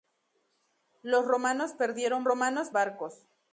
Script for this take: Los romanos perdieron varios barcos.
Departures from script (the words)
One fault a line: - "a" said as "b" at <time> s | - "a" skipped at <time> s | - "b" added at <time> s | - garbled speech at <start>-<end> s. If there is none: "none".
- "varios" said as "romanos" at 2.2 s